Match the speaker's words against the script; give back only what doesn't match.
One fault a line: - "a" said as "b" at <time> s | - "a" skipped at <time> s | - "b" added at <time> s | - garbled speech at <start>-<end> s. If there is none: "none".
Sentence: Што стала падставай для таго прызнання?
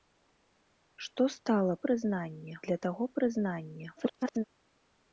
- "падставай" said as "прызнання" at 1.9 s
- garbled speech at 4.0-4.4 s